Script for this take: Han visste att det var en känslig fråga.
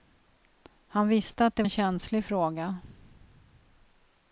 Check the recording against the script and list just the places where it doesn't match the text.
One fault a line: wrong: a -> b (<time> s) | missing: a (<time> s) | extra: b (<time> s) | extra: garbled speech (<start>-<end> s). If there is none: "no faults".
missing: var (1.6 s)